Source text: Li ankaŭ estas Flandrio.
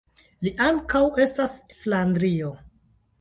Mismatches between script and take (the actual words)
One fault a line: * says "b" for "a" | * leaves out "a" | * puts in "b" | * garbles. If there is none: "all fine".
all fine